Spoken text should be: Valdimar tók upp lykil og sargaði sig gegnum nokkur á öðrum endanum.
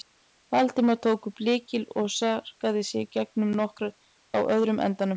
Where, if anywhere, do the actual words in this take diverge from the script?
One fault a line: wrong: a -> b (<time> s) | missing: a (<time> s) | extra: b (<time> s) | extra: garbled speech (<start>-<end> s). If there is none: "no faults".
no faults